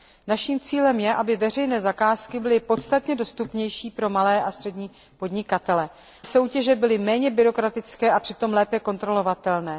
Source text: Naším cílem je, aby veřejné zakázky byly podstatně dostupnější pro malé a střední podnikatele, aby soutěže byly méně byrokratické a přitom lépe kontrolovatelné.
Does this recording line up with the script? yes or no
no